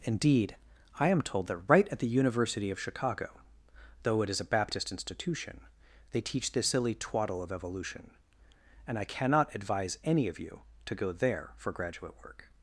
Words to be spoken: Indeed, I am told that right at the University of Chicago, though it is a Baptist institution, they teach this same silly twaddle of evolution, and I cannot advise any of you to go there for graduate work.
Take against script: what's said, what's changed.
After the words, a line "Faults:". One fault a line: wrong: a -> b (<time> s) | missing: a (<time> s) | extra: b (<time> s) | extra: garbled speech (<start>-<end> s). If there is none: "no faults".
Indeed, I am told that right at the University of Chicago, though it is a Baptist institution, they teach this silly twaddle of evolution, and I cannot advise any of you to go there for graduate work.
Faults:
missing: same (6.7 s)